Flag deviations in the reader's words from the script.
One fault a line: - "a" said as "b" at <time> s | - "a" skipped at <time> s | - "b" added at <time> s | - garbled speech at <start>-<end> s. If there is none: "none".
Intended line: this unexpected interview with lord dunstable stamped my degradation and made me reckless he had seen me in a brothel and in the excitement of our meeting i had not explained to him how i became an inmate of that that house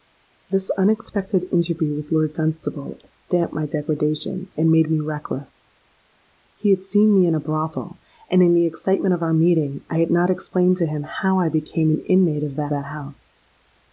none